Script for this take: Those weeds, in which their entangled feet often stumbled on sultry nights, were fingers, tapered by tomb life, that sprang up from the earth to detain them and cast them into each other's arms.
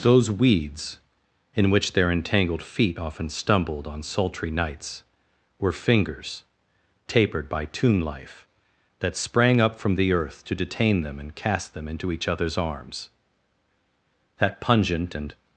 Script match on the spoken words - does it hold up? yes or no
no